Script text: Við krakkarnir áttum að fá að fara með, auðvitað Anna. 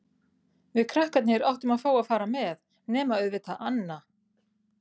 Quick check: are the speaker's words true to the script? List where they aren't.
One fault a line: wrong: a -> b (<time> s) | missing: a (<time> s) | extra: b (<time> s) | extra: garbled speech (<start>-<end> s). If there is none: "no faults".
extra: nema (3.0 s)